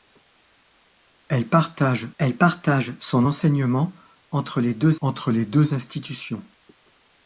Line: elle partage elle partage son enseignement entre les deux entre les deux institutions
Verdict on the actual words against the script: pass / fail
pass